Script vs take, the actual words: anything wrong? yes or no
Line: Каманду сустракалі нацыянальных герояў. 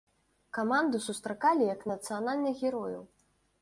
yes